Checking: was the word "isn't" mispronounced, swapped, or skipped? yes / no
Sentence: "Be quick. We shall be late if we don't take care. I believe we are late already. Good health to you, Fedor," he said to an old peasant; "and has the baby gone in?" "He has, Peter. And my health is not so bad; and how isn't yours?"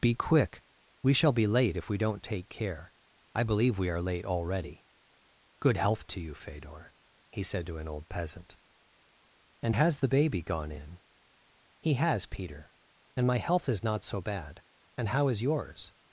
yes